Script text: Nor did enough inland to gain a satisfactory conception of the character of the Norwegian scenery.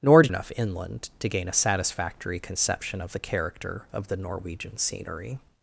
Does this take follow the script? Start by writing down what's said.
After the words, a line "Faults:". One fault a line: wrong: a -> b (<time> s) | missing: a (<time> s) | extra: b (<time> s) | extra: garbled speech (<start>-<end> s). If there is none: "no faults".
Nor did enough inland to gain a satisfactory conception of the character of the Norwegian scenery.
Faults:
no faults